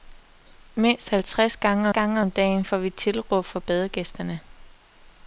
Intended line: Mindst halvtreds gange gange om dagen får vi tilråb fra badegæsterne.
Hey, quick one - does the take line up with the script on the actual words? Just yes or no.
yes